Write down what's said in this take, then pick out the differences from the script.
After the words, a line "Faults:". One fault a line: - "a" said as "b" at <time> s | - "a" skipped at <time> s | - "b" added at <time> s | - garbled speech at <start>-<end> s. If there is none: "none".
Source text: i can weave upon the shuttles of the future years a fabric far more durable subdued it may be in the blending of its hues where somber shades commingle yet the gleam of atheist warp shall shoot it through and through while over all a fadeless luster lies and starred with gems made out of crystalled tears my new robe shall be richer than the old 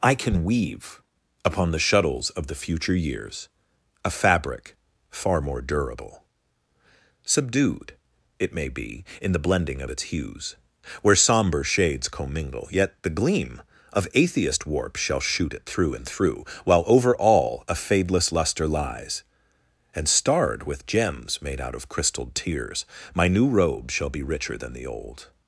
i can weave upon the shuttles of the future years a fabric far more durable subdued it may be in the blending of its hues where somber shades commingle yet the gleam of atheist warp shall shoot it through and through while over all a fadeless luster lies and starred with gems made out of crystalled tears my new robe shall be richer than the old
Faults:
none